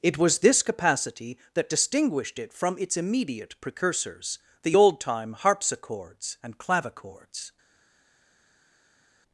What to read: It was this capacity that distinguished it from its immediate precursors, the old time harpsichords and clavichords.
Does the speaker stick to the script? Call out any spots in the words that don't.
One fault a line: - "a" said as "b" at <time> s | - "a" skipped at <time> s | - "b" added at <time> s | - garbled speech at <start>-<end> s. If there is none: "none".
none